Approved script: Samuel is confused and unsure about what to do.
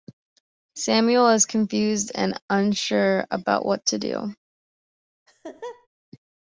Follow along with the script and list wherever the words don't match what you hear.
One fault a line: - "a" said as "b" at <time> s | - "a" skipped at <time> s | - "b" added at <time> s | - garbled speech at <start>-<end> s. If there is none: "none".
none